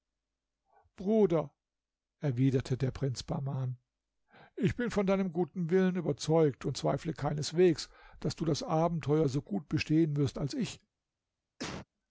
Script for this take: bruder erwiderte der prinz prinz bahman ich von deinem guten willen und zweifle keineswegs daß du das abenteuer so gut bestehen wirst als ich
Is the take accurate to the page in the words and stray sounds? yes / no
no